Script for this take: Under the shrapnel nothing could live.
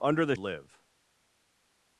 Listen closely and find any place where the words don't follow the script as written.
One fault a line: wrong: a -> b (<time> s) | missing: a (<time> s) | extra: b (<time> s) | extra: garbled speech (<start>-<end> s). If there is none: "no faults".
missing: shrapnel nothing could (0.3 s)